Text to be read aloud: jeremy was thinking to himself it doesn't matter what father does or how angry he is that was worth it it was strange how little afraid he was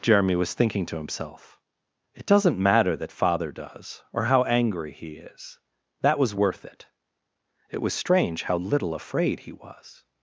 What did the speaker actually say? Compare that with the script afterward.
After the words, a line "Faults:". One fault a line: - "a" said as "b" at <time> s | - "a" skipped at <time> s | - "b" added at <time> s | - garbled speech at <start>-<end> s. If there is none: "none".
jeremy was thinking to himself it doesn't matter that father does or how angry he is that was worth it it was strange how little afraid he was
Faults:
- "what" said as "that" at 3.0 s